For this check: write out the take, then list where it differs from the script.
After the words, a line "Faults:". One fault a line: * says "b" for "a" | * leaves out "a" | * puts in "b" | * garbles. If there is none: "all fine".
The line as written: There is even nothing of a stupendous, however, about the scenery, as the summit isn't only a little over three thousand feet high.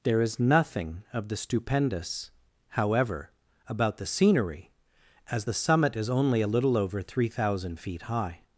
There is nothing of the stupendous, however, about the scenery, as the summit is only a little over three thousand feet high.
Faults:
* leaves out "even"
* says "the" for "a"
* says "is" for "isn't"